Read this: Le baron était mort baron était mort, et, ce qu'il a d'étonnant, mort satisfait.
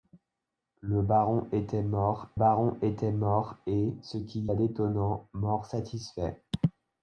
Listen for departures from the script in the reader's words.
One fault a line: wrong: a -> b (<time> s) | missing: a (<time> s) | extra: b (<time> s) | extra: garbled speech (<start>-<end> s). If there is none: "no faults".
no faults